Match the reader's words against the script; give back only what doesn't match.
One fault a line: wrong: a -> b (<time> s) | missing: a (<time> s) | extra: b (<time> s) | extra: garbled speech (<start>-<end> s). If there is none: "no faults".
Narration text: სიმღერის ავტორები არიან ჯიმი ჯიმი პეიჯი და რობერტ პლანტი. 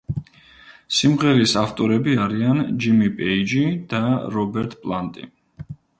missing: ჯიმი (3.1 s)